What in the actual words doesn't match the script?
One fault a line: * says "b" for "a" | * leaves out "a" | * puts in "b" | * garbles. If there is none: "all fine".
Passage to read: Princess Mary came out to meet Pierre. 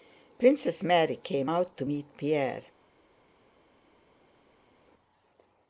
all fine